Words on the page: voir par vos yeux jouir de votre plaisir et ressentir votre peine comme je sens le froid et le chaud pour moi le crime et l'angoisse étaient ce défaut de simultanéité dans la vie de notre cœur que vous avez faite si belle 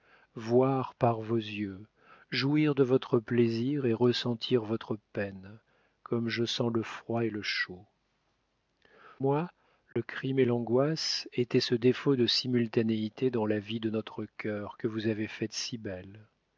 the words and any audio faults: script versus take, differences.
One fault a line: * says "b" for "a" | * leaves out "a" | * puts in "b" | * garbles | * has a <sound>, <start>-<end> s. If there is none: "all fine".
* leaves out "pour"
* has a dropout, 9.9-10.0 s